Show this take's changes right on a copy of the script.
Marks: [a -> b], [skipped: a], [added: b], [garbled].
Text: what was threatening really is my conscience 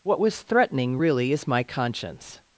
what was threatening really is my conscience